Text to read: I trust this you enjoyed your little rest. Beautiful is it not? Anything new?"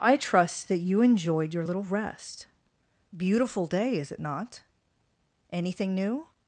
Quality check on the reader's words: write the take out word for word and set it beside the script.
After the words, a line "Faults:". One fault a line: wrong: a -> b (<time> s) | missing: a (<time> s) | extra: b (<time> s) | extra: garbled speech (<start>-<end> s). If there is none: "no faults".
I trust that you enjoyed your little rest. Beautiful day, is it not? Anything new?"
Faults:
wrong: this -> that (0.7 s)
extra: day (3.7 s)